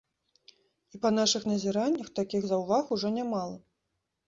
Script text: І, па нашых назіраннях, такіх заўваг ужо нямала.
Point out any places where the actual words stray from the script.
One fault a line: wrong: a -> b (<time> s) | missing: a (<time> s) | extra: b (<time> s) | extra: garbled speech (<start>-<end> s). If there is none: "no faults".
no faults